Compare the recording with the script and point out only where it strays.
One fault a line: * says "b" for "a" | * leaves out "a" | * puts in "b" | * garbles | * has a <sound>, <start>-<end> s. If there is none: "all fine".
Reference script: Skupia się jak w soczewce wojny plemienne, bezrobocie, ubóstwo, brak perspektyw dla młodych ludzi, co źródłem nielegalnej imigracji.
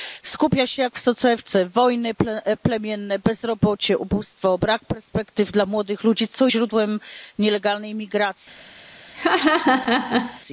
* has a laugh, 9.1-10.4 s